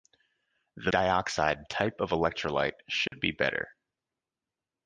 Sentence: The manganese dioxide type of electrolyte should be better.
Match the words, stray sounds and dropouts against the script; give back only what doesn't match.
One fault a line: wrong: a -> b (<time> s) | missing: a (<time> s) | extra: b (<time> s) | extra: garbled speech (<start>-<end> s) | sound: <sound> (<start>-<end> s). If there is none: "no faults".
missing: manganese (0.9 s)
sound: dropout (3.1-3.1 s)